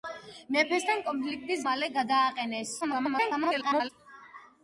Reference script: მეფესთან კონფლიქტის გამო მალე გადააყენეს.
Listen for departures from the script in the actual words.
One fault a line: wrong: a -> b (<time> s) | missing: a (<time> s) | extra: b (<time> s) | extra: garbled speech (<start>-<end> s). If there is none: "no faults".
missing: გამო (1.6 s)
extra: garbled speech (2.8-3.9 s)